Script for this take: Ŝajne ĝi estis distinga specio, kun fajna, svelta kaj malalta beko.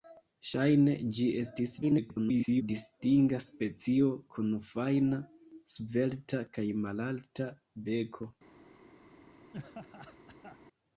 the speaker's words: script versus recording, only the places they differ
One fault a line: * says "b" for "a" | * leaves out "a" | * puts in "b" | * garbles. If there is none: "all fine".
* garbles